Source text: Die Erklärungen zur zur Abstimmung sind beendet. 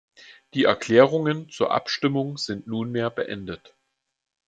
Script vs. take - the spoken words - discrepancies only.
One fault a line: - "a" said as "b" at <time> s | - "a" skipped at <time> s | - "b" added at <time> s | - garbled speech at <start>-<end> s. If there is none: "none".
- "zur" skipped at 1.7 s
- "nunmehr" added at 2.7 s